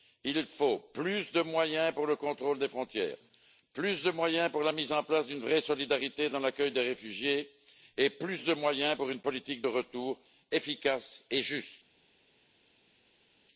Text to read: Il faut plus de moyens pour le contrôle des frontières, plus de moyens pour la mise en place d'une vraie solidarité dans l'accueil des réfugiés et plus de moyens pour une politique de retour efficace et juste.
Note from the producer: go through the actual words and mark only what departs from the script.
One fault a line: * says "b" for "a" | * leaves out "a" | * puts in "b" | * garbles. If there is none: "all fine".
all fine